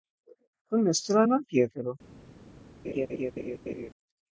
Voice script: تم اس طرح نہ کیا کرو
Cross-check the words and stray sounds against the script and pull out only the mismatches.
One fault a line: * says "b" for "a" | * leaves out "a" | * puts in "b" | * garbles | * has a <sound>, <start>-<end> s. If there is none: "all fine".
* has a laugh, 2.8-3.9 s